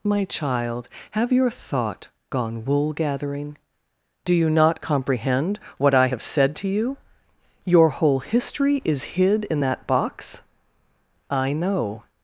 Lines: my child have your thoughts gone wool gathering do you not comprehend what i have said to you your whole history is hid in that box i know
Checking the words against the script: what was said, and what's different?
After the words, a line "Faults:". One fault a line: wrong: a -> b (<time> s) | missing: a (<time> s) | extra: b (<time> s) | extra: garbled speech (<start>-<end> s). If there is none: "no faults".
my child have your thought gone wool gathering do you not comprehend what i have said to you your whole history is hid in that box i know
Faults:
wrong: thoughts -> thought (1.5 s)